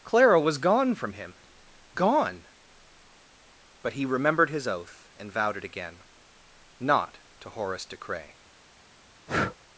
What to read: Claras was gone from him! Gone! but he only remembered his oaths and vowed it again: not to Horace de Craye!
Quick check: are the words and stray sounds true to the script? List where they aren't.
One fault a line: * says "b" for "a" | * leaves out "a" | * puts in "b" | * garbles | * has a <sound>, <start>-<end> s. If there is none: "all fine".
* says "Clara" for "Claras"
* leaves out "only"
* says "oath" for "oaths"
* has a breath, 9.3-9.6 s